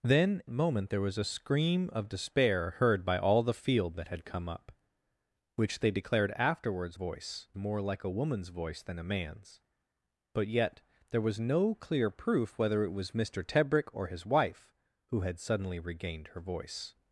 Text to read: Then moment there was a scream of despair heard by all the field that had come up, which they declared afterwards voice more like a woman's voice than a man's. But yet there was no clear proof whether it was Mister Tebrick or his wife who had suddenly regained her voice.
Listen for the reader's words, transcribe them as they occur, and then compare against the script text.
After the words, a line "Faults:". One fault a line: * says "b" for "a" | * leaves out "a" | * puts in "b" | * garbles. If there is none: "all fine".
Then moment there was a scream of despair heard by all the field that had come up, which they declared afterwards voice more like a woman's voice than a man's. But yet there was no clear proof whether it was Mister Tebrick or his wife who had suddenly regained her voice.
Faults:
all fine